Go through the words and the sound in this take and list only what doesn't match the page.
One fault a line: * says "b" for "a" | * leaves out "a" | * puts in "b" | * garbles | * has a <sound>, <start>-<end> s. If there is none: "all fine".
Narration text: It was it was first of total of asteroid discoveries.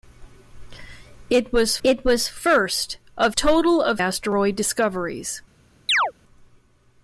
* has a chirp, 5.9-6.1 s